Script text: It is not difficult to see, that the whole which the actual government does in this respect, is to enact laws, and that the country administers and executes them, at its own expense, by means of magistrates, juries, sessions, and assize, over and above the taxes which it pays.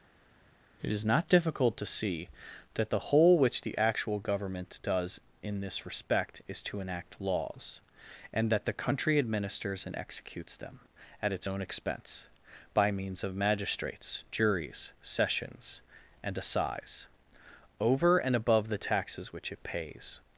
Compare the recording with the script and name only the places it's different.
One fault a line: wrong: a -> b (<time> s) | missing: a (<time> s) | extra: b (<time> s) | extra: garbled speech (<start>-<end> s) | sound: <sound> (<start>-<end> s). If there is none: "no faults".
no faults